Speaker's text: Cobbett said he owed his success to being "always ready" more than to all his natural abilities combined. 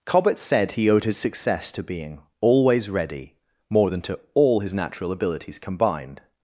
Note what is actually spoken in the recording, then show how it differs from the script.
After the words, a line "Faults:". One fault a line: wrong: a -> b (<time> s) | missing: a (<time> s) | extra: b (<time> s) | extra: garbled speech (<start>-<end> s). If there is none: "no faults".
Cobbett said he owed his success to being "always ready" more than to all his natural abilities combined.
Faults:
no faults